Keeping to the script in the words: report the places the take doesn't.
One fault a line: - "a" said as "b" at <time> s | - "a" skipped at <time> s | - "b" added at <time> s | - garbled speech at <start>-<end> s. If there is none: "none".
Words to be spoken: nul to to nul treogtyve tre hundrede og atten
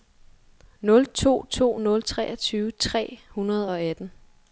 none